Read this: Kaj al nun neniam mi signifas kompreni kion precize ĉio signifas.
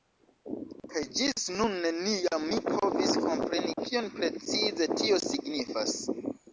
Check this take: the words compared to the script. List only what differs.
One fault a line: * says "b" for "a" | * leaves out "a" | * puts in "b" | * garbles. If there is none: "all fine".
* says "ĝis" for "al"
* says "povis" for "signifas"
* says "tio" for "ĉio"